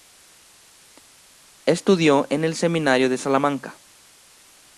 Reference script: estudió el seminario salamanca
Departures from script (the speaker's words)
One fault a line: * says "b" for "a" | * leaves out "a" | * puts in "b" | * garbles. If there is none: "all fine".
* puts in "en"
* puts in "de"